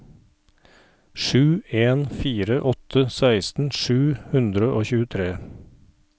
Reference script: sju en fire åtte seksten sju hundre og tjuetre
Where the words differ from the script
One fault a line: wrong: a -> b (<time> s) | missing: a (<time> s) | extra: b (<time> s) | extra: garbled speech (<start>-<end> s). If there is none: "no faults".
no faults